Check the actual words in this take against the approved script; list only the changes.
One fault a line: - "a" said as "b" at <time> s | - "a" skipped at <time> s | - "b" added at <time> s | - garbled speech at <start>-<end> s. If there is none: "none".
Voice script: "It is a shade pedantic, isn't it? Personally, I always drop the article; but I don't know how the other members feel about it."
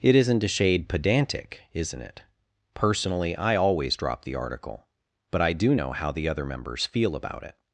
- "is" said as "isn't" at 0.1 s
- "don't" said as "do" at 5.5 s